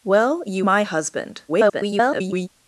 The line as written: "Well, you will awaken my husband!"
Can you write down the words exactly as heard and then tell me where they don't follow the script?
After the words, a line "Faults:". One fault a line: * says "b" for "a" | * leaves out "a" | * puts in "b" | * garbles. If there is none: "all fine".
"Well, you my husband!" [garbled]
Faults:
* leaves out "will awaken"
* garbles